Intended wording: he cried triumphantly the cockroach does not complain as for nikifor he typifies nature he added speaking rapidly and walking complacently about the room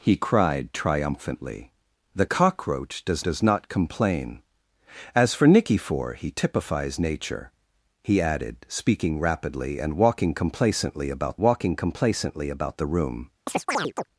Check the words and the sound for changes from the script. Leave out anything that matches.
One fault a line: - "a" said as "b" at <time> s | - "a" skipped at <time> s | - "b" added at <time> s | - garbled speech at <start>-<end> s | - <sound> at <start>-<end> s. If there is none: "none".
- "does" added at 3.2 s
- "walking complacently about" added at 11.4 s
- chirp at 13.5-14.1 s